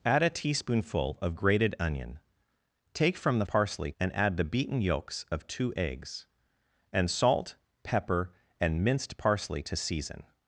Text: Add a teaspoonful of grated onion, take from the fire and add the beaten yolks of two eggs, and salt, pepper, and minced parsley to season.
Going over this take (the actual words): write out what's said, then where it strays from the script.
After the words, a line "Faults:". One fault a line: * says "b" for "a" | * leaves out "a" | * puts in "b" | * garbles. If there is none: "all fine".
Add a teaspoonful of grated onion, take from the parsley and add the beaten yolks of two eggs, and salt, pepper, and minced parsley to season.
Faults:
* says "parsley" for "fire"